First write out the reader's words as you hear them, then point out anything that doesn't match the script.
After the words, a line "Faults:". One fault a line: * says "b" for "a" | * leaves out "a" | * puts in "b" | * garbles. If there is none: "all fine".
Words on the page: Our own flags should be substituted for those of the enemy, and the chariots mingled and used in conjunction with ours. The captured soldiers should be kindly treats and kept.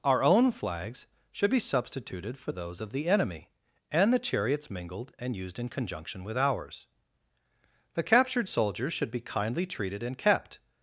Our own flags should be substituted for those of the enemy, and the chariots mingled and used in conjunction with ours. The captured soldiers should be kindly treated and kept.
Faults:
* says "treated" for "treats"